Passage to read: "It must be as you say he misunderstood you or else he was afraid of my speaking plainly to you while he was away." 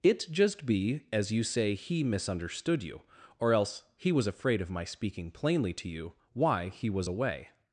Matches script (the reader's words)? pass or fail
fail